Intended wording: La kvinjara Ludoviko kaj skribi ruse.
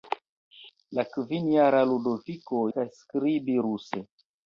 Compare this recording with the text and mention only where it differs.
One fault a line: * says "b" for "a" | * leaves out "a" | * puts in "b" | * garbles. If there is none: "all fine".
all fine